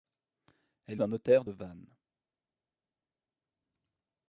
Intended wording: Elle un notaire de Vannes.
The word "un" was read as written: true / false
true